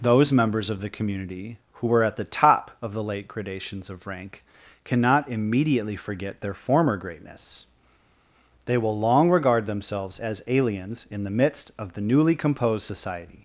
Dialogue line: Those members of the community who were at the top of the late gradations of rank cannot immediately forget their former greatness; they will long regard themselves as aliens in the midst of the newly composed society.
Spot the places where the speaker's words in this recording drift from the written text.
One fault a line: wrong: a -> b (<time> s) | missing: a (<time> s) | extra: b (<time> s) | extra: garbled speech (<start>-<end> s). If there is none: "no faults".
no faults